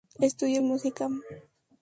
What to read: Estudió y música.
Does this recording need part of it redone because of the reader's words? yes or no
no